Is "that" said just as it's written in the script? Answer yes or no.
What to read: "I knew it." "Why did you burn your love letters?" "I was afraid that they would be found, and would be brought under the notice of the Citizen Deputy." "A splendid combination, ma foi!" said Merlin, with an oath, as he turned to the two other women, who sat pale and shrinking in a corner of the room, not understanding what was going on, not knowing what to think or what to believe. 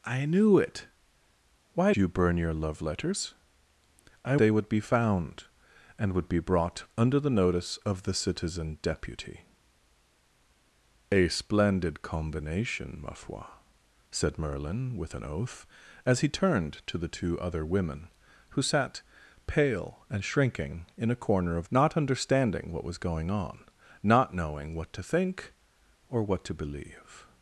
no